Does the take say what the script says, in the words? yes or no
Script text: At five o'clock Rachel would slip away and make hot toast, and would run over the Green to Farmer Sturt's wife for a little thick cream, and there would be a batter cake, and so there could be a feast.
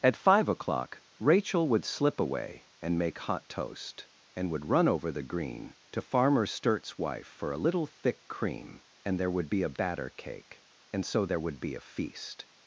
no